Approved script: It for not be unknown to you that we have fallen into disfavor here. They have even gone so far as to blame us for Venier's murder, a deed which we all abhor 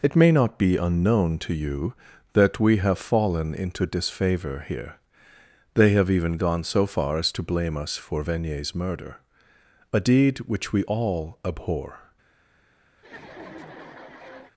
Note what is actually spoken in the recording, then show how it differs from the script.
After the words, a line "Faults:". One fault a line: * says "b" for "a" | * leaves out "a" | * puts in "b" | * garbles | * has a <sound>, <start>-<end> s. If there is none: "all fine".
It may not be unknown to you that we have fallen into disfavor here. They have even gone so far as to blame us for Venier's murder, a deed which we all abhor
Faults:
* says "may" for "for"
* has a laugh, 13.0-14.5 s